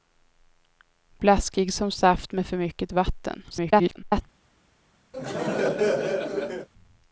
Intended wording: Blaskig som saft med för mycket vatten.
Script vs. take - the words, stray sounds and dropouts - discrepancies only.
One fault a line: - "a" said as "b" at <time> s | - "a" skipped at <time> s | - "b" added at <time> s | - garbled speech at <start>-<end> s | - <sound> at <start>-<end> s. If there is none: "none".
- garbled speech at 3.5-4.2 s
- laugh at 5.1-6.7 s